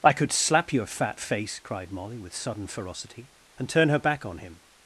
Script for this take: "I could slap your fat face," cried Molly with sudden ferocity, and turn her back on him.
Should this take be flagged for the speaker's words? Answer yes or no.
no